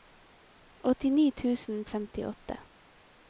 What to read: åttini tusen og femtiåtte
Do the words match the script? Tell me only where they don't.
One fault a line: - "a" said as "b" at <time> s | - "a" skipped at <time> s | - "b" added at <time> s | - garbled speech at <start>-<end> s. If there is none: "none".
none